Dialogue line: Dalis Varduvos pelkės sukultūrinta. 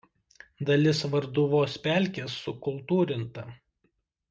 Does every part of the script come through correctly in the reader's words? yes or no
yes